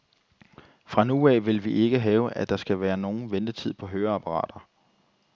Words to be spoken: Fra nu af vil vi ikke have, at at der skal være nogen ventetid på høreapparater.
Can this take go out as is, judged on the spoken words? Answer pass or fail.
fail